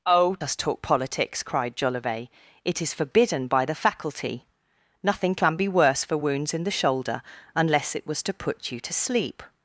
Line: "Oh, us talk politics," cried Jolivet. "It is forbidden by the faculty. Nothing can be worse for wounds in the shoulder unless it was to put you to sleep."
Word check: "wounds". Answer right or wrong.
right